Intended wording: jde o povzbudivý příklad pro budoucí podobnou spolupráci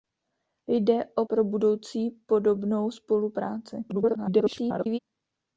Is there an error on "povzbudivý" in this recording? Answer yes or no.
yes